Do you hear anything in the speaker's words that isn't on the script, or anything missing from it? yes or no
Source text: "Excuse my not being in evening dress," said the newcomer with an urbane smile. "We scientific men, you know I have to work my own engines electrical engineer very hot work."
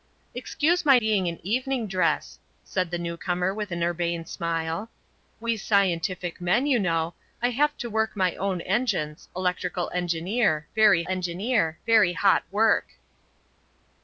yes